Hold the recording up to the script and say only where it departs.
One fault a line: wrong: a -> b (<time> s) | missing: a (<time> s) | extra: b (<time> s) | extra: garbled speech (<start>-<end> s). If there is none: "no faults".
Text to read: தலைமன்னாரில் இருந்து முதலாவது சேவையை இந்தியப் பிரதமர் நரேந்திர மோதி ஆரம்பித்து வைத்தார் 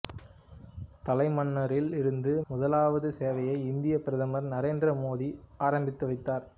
no faults